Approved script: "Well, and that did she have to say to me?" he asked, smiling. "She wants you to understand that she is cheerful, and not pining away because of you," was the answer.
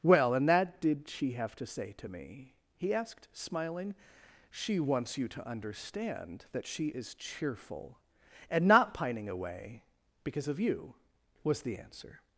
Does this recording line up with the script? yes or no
yes